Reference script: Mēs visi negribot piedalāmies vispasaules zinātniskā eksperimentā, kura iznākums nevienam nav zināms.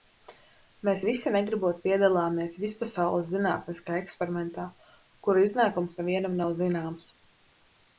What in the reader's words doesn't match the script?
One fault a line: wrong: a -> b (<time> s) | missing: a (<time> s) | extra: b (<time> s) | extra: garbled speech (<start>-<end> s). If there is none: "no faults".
no faults